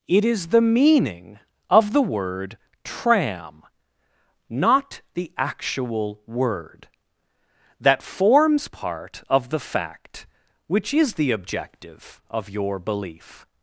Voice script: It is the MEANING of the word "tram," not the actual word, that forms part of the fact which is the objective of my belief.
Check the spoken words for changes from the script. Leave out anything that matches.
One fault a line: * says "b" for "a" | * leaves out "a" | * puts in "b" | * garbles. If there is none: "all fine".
* says "your" for "my"